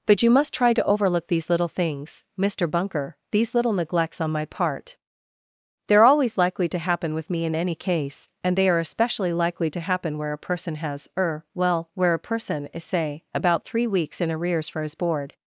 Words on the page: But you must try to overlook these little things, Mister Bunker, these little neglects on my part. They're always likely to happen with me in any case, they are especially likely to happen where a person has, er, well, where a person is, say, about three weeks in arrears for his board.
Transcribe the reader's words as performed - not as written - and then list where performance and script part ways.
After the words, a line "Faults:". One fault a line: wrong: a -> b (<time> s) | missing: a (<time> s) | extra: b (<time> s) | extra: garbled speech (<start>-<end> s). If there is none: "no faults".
But you must try to overlook these little things, Mister Bunker, these little neglects on my part. They're always likely to happen with me in any case, and they are especially likely to happen where a person has, er, well, where a person is, say, about three weeks in arrears for his board.
Faults:
extra: and (8.4 s)